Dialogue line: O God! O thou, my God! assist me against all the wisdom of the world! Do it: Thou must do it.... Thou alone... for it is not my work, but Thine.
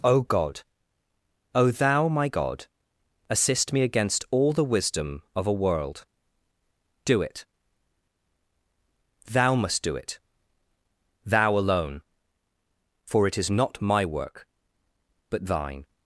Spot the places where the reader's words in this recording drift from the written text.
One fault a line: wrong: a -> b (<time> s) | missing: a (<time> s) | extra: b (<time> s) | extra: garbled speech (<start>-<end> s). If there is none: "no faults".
wrong: the -> a (5.4 s)